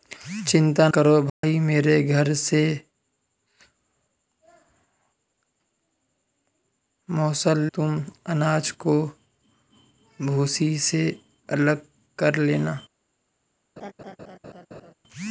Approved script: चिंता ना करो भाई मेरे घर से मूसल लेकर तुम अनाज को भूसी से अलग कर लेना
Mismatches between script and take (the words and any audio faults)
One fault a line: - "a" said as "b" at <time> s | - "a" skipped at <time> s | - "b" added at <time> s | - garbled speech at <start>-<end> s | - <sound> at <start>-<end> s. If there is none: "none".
- "ना" skipped at 0.9 s
- dropout at 1.3-1.4 s
- "लेकर" skipped at 7.6 s
- laugh at 13.8-14.9 s